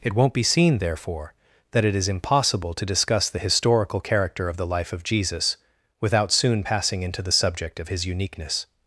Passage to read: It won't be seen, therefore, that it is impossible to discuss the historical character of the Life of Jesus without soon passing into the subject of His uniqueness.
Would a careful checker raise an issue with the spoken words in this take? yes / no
no